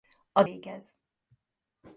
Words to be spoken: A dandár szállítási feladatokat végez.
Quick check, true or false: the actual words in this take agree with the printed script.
false